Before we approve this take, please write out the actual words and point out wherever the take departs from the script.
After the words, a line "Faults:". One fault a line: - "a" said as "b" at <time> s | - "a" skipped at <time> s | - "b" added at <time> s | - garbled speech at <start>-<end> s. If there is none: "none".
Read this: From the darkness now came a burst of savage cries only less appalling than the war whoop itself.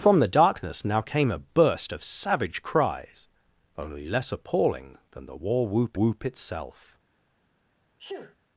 From the darkness now came a burst of savage cries only less appalling than the war whoop whoop itself.
Faults:
- "whoop" added at 5.9 s